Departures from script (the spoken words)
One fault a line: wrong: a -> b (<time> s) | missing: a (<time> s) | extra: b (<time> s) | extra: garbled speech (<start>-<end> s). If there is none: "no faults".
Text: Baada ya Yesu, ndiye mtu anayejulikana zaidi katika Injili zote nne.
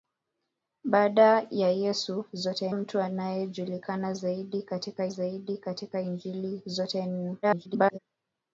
wrong: ndiye -> zote (2.3 s)
extra: zaidi katika (5.1 s)
extra: garbled speech (7.4-8.0 s)